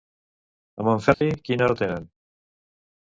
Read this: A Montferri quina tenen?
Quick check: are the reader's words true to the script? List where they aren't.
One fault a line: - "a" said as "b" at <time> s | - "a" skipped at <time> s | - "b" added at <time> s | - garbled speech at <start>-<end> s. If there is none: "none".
- "hora" added at 1.6 s